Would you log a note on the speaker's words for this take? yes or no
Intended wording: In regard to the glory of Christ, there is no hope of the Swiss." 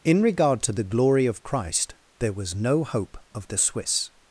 yes